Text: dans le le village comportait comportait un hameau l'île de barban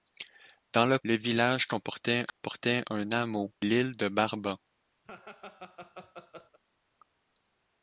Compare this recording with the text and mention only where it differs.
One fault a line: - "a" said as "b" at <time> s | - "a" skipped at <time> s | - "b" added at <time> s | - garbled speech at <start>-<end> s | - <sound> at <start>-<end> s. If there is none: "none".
- dropout at 2.3-2.4 s
- laugh at 5.1-6.6 s